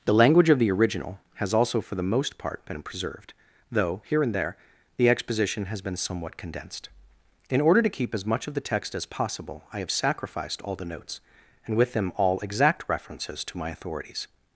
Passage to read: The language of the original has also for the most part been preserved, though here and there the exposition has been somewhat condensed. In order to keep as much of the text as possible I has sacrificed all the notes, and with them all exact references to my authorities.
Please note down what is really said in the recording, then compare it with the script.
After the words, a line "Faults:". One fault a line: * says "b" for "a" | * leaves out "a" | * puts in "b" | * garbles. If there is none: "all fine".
The language of the original has also for the most part been preserved, though here and there the exposition has been somewhat condensed. In order to keep as much of the text as possible I have sacrificed all the notes, and with them all exact references to my authorities.
Faults:
* says "have" for "has"